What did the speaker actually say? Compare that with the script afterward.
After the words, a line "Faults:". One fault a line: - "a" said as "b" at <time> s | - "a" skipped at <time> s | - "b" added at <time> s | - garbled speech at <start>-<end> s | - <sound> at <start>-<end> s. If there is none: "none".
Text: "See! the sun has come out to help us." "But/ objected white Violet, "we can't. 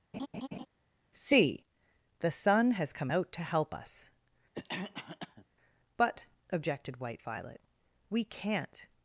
"See! the sun has come out to help us." "But/ objected white Violet, "we can't.
Faults:
- laugh at 0.1-0.7 s
- cough at 4.5-5.5 s